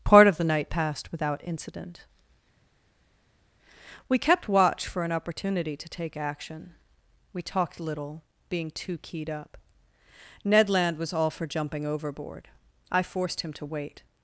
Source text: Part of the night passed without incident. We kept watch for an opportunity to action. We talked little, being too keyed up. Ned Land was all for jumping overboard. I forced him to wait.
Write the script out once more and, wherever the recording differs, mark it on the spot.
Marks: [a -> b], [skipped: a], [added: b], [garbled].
Part of the night passed without incident. We kept watch for an opportunity to [added: take] action. We talked little, being too keyed up. Ned Land was all for jumping overboard. I forced him to wait.